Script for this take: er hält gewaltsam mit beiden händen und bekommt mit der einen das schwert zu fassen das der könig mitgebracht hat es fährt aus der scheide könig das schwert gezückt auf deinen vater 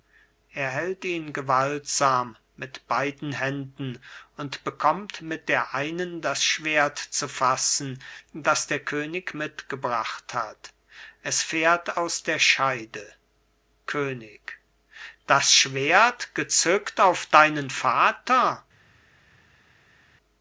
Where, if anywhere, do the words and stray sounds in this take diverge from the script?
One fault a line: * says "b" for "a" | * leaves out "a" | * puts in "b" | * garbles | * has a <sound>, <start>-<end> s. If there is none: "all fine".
* puts in "ihn"